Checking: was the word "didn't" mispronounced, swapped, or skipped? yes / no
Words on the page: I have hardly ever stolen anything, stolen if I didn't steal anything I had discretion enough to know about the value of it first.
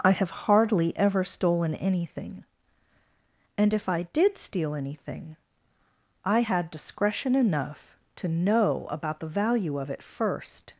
yes